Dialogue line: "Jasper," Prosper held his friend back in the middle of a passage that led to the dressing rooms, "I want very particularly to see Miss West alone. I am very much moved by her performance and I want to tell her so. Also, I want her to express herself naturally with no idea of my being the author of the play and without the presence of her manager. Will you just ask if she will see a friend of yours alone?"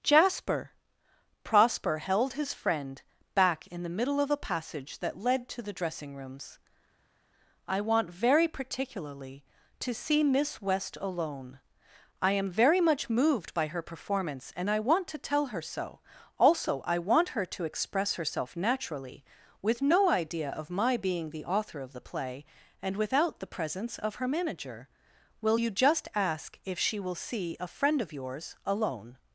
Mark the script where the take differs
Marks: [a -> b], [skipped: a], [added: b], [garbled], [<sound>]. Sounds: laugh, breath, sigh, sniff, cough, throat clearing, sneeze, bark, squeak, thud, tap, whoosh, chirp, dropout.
"Jasper," Prosper held his friend back in the middle of a passage that led to the dressing rooms, "I want very particularly to see Miss West alone. I am very much moved by her performance and I want to tell her so. Also, I want her to express herself naturally with no idea of my being the author of the play and without the presence of her manager. Will you just ask if she will see a friend of yours alone?"